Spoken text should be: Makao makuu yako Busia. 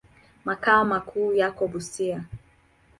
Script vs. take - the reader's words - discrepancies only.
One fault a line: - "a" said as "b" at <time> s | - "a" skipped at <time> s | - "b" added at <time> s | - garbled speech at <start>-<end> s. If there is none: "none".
none